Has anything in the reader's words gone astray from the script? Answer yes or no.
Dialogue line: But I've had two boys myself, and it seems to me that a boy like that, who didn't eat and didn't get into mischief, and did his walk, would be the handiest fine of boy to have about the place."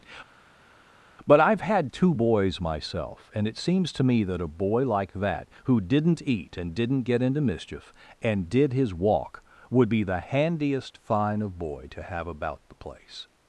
no